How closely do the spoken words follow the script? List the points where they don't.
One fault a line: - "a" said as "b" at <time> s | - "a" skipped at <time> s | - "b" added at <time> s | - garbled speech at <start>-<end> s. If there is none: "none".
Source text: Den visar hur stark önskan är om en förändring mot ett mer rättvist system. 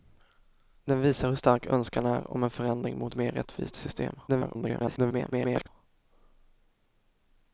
- "ett" skipped at 3.1 s
- garbled speech at 4.3-5.7 s